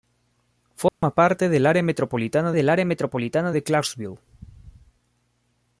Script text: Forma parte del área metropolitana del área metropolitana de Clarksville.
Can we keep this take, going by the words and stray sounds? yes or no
no